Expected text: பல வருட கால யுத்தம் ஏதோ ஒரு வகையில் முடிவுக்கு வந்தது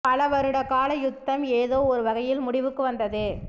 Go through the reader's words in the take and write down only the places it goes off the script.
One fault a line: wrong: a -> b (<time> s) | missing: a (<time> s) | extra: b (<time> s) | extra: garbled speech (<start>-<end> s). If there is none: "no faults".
no faults